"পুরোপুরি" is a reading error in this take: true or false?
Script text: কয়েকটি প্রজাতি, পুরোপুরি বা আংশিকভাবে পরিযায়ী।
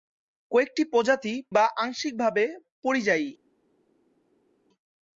true